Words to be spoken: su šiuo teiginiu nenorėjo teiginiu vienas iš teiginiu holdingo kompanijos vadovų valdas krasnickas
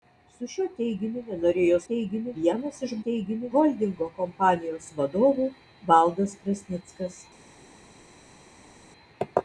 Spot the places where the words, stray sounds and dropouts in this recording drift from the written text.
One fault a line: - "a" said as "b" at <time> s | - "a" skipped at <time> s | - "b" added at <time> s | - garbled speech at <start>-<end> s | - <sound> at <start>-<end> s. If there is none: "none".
none